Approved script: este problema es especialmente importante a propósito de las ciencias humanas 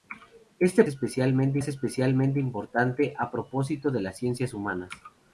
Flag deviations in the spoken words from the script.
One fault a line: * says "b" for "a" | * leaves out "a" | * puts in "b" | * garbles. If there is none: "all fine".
* says "especialmente" for "problema"